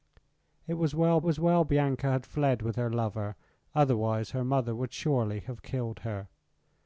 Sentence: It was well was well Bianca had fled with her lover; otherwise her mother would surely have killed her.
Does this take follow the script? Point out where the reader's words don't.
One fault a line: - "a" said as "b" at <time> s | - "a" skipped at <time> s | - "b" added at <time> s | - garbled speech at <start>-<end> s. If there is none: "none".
none